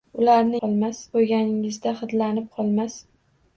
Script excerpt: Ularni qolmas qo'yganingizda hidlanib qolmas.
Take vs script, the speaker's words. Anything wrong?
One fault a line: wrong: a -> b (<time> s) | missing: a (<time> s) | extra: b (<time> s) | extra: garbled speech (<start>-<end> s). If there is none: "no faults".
no faults